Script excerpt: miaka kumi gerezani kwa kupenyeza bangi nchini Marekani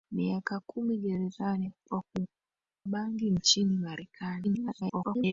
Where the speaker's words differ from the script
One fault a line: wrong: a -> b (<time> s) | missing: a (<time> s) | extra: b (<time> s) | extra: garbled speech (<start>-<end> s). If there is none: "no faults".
missing: kupenyeza (2.0 s)
extra: garbled speech (4.4-5.3 s)